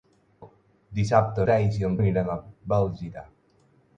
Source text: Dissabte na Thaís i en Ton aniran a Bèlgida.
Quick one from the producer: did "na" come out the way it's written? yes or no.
no